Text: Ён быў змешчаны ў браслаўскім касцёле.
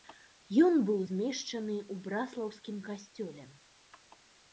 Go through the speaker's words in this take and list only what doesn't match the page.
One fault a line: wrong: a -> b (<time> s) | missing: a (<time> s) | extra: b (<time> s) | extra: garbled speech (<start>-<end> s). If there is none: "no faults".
no faults